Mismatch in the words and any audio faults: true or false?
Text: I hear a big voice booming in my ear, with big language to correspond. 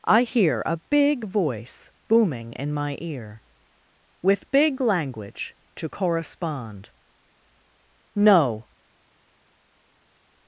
true